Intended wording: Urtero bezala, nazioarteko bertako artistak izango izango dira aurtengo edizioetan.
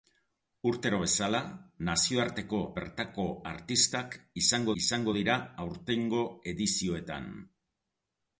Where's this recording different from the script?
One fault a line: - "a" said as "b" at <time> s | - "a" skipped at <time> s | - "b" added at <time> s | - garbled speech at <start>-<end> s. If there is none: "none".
none